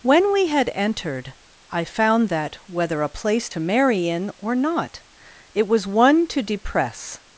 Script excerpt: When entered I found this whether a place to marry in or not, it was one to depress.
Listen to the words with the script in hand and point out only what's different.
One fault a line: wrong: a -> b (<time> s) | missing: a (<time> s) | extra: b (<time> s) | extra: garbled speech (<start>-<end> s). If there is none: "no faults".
extra: we had (0.3 s)
wrong: this -> that (2.3 s)